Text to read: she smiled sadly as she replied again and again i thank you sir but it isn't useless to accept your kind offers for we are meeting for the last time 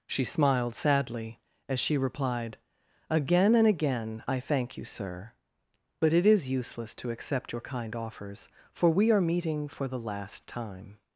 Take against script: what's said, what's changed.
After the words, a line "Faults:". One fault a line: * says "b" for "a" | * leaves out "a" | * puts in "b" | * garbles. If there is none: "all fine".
she smiled sadly as she replied again and again i thank you sir but it is useless to accept your kind offers for we are meeting for the last time
Faults:
* says "is" for "isn't"